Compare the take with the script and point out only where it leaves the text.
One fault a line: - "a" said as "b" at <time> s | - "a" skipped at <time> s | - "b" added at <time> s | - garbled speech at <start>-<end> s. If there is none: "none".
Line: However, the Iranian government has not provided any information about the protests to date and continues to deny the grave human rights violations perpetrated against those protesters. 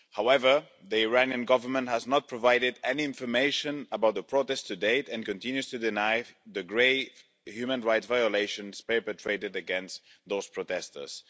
none